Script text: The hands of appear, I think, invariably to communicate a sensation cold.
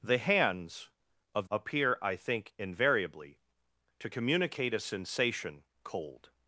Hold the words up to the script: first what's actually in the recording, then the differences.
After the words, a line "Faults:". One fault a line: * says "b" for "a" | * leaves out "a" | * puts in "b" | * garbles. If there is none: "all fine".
The hands of appear, I think, invariably to communicate a sensation cold.
Faults:
all fine